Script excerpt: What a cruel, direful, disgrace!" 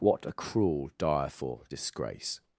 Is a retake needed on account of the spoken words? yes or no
no